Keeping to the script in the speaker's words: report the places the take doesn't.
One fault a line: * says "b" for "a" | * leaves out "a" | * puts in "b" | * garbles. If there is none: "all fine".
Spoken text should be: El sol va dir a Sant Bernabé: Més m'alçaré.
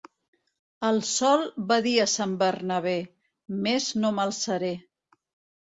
* puts in "no"